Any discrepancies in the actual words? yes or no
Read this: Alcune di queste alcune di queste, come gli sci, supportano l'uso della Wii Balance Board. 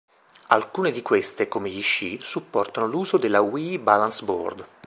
yes